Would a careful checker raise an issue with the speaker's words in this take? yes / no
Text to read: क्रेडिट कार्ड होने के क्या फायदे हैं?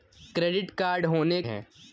yes